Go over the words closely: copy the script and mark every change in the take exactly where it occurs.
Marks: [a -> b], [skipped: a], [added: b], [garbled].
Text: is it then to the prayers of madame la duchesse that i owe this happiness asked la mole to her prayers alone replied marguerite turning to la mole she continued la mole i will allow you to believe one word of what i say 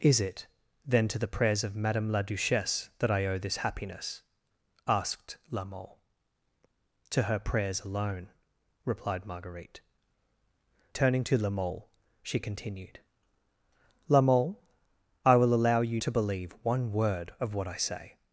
is it then to the prayers of madame la duchesse that i owe this happiness asked la mole to her prayers alone replied marguerite turning to la mole she continued la mole i will allow you to believe one word of what i say